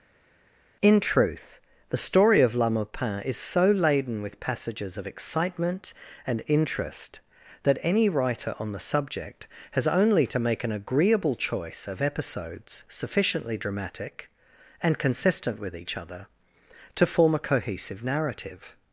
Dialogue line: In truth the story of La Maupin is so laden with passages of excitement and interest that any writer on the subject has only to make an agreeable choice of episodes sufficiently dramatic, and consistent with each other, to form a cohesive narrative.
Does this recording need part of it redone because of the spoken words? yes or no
no